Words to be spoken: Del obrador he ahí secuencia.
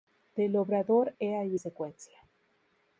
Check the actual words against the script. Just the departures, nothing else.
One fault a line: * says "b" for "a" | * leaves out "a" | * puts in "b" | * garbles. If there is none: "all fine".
all fine